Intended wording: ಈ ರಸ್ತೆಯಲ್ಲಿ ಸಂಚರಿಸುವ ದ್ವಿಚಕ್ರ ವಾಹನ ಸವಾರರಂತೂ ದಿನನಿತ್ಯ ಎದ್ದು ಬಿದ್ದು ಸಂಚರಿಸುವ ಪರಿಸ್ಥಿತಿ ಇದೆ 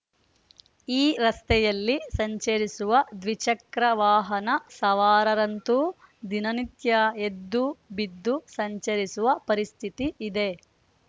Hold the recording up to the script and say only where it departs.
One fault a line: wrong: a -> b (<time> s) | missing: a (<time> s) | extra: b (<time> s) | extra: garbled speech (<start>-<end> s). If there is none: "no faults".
no faults